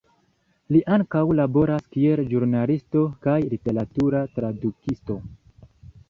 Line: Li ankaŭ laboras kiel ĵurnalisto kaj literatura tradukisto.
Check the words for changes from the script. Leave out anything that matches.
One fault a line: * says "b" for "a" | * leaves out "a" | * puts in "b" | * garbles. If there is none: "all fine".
all fine